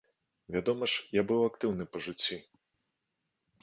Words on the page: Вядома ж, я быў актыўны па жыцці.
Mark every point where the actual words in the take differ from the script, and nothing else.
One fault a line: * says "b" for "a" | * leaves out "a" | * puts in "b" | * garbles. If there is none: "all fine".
all fine